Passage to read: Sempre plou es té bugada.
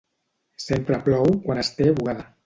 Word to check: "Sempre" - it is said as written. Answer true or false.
true